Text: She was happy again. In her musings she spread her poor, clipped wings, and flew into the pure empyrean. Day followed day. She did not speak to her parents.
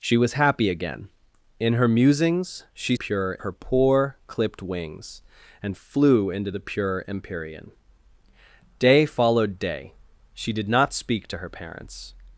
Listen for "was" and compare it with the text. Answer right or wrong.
right